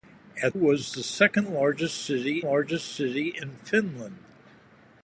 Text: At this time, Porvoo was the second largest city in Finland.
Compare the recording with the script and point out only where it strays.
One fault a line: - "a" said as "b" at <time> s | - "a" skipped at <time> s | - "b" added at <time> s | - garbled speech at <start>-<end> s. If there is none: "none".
- "this time Porvoo" skipped at 0.6 s
- "largest city" added at 2.4 s